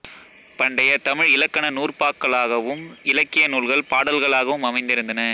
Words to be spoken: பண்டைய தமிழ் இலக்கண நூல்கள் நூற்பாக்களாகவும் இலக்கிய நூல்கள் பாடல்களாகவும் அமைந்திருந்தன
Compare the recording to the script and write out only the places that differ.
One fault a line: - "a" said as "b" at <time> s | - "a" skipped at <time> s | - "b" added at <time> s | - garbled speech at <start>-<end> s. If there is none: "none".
- "நூல்கள்" skipped at 1.6 s